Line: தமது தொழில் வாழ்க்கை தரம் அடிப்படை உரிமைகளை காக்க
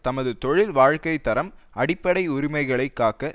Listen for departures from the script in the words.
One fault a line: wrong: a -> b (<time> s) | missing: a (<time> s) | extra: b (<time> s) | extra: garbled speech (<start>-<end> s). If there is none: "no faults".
no faults